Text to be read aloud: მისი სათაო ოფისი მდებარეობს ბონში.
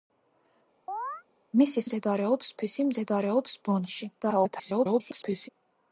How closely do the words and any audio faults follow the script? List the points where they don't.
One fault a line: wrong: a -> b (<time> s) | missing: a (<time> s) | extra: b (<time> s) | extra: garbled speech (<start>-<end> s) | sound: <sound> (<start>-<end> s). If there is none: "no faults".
sound: chirp (0.9-1.2 s)
wrong: სათაო -> მდებარეობს (1.8 s)
extra: garbled speech (4.2-5.5 s)